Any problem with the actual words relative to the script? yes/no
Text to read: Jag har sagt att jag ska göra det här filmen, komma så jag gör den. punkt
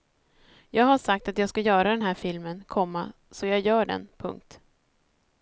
yes